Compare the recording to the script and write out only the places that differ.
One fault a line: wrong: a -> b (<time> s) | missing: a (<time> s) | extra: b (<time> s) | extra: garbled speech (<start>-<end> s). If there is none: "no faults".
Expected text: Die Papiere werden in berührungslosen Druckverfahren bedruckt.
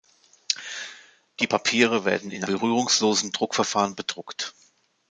no faults